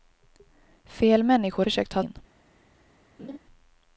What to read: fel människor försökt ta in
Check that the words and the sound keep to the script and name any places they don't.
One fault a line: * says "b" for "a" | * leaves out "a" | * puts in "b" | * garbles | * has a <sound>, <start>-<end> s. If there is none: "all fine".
* has a laugh, 3.2-3.4 s